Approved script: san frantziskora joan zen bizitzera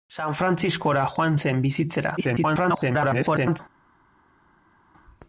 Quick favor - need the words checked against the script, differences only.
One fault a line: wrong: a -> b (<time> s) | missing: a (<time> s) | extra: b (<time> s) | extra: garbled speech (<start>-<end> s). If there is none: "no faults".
extra: garbled speech (2.2-3.6 s)